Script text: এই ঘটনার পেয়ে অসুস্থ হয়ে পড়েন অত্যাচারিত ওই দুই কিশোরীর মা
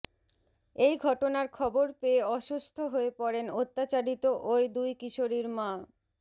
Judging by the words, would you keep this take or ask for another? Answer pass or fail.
fail